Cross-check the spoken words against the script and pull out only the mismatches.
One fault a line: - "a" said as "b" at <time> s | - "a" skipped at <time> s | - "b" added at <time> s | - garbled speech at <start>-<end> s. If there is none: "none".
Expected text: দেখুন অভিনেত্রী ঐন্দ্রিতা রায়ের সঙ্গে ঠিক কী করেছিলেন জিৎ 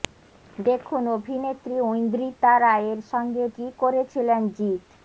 - "ঠিক" skipped at 3.4 s